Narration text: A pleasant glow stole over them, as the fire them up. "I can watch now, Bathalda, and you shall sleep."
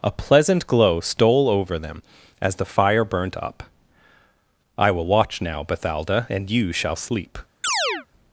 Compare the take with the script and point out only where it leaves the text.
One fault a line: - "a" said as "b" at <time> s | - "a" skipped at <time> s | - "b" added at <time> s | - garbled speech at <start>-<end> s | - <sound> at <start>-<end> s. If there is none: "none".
- "them" said as "burnt" at 3.0 s
- "can" said as "will" at 4.9 s
- chirp at 7.6-8.1 s